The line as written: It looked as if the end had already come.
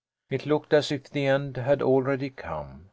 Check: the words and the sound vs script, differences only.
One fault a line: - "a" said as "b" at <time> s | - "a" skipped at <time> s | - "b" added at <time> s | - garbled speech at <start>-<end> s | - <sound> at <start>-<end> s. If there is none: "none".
none